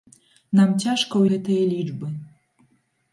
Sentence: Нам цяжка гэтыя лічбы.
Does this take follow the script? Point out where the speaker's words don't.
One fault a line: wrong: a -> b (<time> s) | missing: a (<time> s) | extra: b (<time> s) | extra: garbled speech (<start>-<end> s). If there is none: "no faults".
no faults